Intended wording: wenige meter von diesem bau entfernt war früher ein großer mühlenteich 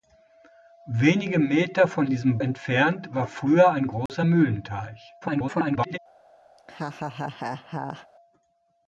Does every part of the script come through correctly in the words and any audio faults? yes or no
no